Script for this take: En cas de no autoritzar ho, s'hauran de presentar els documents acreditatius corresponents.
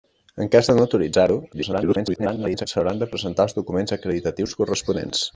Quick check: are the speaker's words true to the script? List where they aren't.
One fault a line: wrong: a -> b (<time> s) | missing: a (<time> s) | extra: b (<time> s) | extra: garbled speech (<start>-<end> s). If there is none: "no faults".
extra: garbled speech (1.5-2.7 s)